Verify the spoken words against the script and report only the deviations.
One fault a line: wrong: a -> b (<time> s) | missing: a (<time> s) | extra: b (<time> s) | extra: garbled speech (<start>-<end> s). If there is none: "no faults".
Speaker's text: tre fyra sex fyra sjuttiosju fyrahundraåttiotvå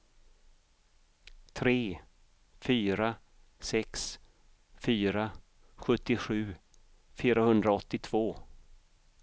no faults